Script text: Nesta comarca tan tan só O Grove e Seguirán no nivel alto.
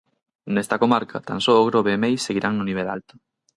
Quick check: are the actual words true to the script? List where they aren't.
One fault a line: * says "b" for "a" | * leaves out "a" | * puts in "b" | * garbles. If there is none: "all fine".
* leaves out "tan"
* puts in "Meis"